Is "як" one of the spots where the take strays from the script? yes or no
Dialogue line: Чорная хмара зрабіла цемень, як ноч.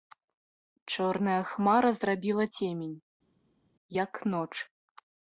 no